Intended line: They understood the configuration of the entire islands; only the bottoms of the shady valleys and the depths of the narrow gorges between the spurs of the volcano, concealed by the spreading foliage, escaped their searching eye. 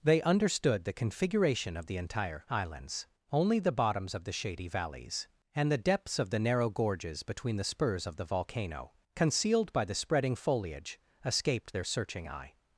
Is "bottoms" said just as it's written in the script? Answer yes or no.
yes